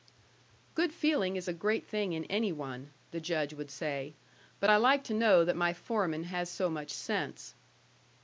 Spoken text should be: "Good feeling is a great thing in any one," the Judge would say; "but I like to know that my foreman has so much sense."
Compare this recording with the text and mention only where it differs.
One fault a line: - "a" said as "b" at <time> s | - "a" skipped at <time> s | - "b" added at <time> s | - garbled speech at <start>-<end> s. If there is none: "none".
none